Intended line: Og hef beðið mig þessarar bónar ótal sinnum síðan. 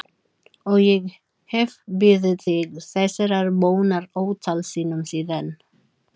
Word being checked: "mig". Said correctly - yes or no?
no